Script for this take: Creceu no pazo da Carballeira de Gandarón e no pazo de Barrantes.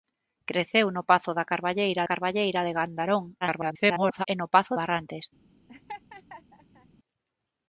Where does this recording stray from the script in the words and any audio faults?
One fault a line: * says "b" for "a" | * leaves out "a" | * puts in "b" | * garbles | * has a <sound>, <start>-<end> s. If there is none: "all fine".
* puts in "Carballeira"
* garbles
* leaves out "de"
* has a laugh, 5.7-6.9 s